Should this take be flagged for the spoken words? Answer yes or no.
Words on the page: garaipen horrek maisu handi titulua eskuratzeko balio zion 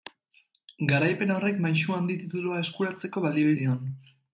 no